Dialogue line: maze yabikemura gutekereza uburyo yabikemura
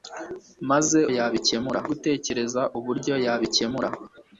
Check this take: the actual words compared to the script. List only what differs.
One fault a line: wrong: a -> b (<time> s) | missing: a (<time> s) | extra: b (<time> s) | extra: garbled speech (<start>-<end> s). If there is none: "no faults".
no faults